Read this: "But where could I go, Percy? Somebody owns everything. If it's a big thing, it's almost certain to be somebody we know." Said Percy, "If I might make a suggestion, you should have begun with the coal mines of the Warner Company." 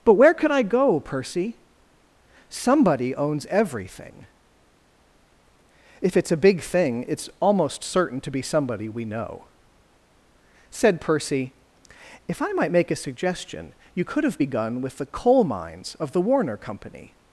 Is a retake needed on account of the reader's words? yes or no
yes